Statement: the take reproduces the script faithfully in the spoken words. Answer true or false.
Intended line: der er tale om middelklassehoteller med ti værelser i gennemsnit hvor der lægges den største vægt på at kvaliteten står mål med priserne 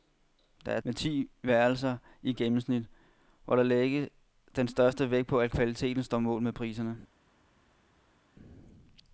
false